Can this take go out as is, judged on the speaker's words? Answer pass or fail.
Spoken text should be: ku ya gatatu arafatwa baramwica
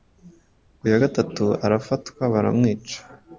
pass